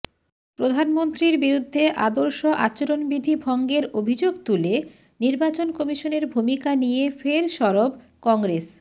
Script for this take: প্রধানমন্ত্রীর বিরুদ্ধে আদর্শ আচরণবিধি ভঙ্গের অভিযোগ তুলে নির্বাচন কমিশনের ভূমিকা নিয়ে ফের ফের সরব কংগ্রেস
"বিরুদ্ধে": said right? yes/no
yes